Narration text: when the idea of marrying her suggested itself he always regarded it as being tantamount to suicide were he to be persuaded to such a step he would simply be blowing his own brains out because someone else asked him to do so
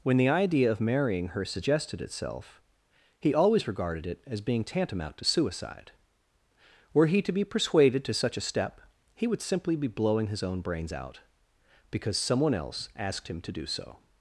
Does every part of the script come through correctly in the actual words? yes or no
yes